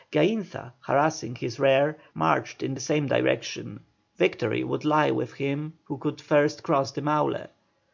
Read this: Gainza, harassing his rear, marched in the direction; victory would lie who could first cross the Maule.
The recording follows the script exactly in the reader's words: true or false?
false